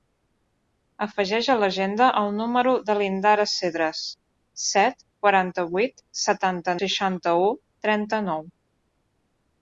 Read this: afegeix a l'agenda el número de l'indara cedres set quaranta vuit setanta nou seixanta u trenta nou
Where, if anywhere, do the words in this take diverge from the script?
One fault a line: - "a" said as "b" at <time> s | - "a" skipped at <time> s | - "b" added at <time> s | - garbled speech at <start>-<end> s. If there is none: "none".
- "nou" skipped at 6.8 s